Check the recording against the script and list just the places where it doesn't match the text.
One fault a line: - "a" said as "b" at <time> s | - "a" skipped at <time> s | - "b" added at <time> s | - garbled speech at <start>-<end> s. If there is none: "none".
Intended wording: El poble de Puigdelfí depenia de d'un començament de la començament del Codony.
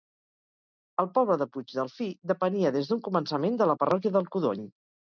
- "de" said as "des" at 2.8 s
- "començament" said as "parròquia" at 3.9 s